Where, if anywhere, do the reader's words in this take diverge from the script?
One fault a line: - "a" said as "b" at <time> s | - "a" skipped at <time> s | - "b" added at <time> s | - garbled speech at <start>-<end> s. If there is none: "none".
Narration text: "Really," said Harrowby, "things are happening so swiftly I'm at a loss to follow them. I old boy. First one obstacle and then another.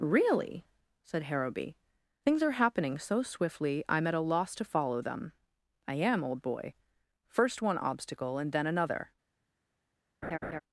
- "am" added at 5.9 s